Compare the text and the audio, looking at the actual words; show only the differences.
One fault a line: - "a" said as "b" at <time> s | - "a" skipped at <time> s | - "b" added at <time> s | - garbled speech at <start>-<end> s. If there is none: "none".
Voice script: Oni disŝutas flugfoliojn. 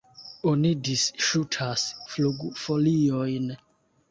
none